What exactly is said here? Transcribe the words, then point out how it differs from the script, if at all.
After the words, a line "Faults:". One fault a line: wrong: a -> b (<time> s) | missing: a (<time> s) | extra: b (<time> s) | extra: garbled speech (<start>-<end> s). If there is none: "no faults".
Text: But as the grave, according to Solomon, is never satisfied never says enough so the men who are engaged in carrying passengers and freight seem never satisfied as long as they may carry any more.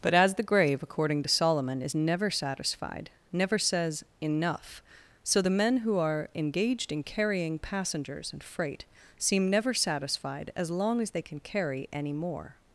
But as the grave, according to Solomon, is never satisfied never says enough so the men who are engaged in carrying passengers and freight seem never satisfied as long as they can carry any more.
Faults:
wrong: may -> can (11.2 s)